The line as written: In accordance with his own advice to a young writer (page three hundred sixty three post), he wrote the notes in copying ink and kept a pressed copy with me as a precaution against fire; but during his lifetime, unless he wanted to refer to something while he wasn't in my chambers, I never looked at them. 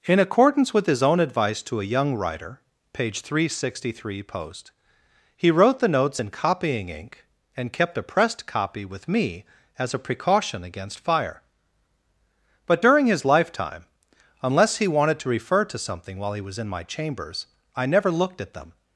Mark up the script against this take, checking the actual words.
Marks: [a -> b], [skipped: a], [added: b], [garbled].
In accordance with his own advice to a young writer (page three hundred sixty three post), he wrote the notes in copying ink and kept a pressed copy with me as a precaution against fire; but during his lifetime, unless he wanted to refer to something while he [wasn't -> was] in my chambers, I never looked at them.